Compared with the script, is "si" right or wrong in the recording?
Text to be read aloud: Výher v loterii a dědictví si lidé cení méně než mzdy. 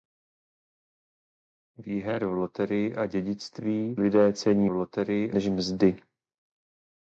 wrong